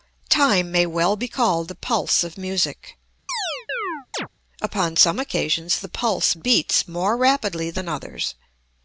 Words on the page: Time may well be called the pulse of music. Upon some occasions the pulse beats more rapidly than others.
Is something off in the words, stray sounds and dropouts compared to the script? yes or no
yes